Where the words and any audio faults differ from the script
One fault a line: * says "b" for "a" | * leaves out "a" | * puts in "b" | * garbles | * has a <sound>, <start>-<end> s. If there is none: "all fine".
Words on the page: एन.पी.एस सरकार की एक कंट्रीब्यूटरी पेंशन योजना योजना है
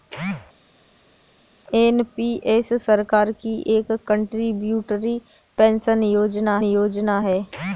all fine